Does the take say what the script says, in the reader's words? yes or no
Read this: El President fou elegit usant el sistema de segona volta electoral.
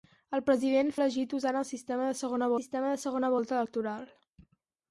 no